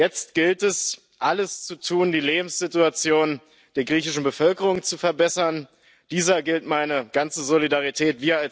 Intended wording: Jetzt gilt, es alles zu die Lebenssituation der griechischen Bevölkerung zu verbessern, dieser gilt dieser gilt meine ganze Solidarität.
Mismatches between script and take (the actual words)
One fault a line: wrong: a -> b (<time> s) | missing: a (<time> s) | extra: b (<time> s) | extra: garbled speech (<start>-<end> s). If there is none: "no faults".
extra: tun (1.8 s)
missing: dieser gilt (6.7 s)